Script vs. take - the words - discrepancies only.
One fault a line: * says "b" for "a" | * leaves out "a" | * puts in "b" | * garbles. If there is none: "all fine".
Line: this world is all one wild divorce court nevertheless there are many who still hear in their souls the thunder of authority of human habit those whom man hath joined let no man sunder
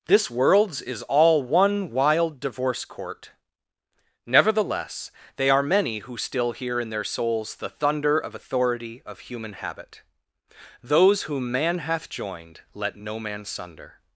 * says "worlds" for "world"
* says "they" for "there"